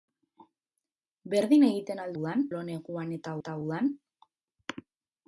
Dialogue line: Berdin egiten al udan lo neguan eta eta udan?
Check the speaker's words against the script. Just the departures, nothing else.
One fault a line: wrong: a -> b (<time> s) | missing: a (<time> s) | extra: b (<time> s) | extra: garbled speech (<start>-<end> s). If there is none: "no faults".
no faults